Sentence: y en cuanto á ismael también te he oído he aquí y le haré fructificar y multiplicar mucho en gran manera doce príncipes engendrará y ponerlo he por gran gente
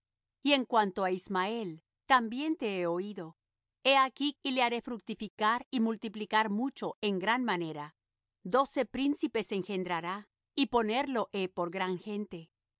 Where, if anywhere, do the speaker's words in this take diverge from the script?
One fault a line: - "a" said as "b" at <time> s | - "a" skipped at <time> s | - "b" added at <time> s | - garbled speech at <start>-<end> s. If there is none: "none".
none